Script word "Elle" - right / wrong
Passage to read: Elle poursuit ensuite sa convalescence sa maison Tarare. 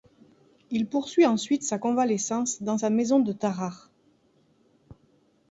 wrong